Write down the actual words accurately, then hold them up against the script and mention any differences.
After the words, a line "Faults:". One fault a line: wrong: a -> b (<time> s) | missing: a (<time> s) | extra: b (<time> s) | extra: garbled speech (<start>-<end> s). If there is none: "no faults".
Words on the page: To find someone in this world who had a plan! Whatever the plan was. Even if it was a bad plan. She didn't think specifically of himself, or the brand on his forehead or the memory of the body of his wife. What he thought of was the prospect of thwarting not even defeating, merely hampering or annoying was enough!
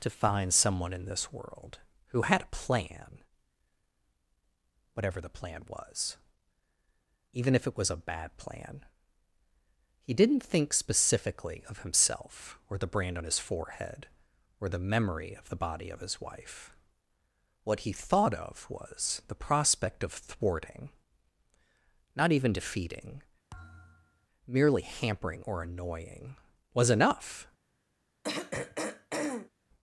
To find someone in this world who had a plan! Whatever the plan was. Even if it was a bad plan. He didn't think specifically of himself, or the brand on his forehead or the memory of the body of his wife. What he thought of was the prospect of thwarting not even defeating, merely hampering or annoying was enough!
Faults:
wrong: She -> He (10.0 s)